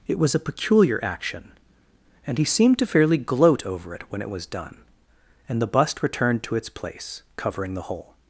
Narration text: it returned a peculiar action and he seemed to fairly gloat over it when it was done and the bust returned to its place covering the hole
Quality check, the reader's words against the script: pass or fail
fail